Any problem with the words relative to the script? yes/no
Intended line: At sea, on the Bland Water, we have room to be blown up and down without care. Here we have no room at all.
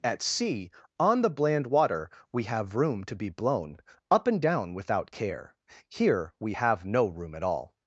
no